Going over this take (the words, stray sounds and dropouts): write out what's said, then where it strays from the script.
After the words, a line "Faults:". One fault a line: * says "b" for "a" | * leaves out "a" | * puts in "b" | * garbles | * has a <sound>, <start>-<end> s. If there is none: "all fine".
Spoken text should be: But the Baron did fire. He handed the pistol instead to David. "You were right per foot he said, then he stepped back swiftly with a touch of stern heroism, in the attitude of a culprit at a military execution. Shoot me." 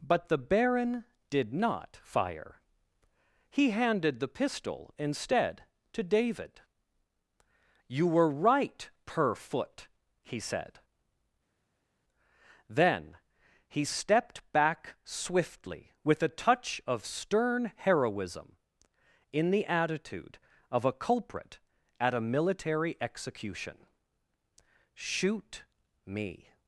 But the Baron did not fire. He handed the pistol instead to David. "You were right per foot he said, then he stepped back swiftly with a touch of stern heroism, in the attitude of a culprit at a military execution. Shoot me."
Faults:
* puts in "not"